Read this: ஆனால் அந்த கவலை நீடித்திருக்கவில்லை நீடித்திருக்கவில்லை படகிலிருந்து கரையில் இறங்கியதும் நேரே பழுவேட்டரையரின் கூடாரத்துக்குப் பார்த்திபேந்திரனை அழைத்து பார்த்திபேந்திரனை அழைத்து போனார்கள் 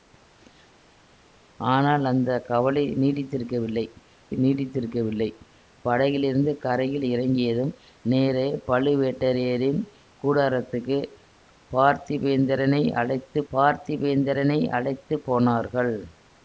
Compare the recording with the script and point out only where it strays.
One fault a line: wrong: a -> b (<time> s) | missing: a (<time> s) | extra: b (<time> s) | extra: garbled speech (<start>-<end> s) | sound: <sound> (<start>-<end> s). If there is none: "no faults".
no faults